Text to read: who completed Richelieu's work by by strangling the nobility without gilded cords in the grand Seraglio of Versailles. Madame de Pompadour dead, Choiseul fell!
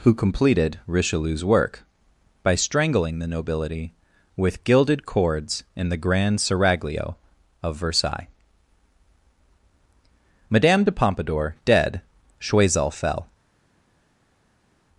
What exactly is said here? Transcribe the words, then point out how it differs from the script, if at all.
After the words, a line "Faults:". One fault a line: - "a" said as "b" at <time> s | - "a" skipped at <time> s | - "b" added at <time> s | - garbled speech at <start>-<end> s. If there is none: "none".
who completed Richelieu's work by strangling the nobility with gilded cords in the grand Seraglio of Versailles. Madame de Pompadour dead, Choiseul fell!
Faults:
- "by" skipped at 2.5 s
- "without" said as "with" at 4.3 s